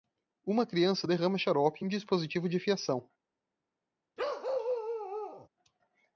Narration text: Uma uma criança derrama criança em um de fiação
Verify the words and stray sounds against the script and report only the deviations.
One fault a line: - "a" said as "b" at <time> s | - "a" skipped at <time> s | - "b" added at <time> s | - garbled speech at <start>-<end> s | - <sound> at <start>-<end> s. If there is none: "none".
- "uma" skipped at 0.7 s
- "criança" said as "xarope" at 1.4 s
- "dispositivo" added at 1.9 s
- bark at 4.2-5.5 s